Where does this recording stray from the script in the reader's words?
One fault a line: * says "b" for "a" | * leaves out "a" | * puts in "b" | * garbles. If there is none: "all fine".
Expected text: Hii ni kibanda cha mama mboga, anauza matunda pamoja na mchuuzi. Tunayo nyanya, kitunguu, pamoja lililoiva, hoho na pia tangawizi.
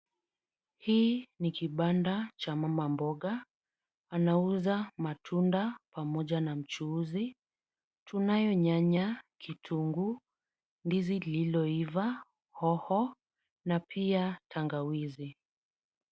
* says "ndizi" for "pamoja"